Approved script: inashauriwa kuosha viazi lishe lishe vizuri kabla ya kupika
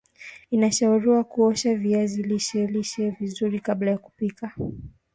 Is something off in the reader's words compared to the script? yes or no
no